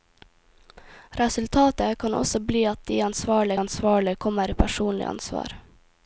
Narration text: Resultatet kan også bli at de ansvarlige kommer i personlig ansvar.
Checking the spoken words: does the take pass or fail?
fail